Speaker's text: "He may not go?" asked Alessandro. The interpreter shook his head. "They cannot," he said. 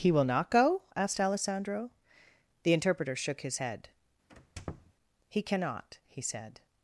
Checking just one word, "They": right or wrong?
wrong